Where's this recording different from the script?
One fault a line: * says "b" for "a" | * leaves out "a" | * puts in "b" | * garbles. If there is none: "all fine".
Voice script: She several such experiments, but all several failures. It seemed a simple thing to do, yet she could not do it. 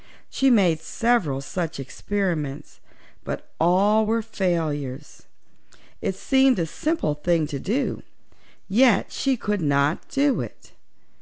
* puts in "made"
* says "were" for "several"